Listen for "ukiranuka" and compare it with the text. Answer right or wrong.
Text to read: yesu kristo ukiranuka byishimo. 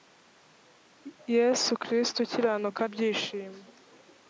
right